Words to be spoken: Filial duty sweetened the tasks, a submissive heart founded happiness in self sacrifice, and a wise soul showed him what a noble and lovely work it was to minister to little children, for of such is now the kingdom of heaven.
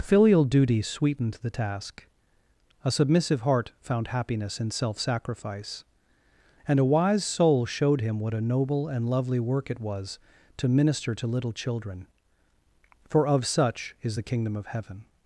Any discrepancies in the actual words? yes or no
yes